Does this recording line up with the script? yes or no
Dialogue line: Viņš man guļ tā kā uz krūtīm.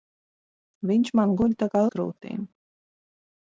yes